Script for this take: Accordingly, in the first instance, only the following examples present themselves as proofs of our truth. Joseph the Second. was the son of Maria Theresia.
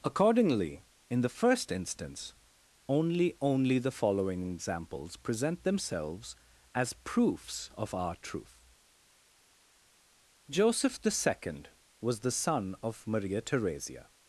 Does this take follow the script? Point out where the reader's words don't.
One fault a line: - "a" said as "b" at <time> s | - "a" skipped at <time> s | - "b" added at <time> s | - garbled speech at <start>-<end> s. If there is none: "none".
- "only" added at 3.4 s